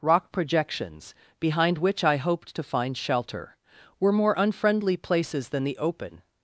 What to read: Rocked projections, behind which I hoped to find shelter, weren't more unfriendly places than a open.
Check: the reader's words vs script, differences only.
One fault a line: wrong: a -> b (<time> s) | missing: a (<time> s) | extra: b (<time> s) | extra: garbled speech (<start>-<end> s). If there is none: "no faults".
wrong: Rocked -> Rock (0.0 s)
wrong: weren't -> were (4.0 s)
wrong: a -> the (5.6 s)